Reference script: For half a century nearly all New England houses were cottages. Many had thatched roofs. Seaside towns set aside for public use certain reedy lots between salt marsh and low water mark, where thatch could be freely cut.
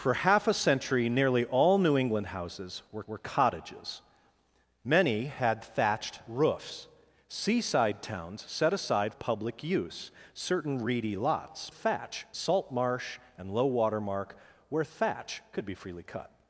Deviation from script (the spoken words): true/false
true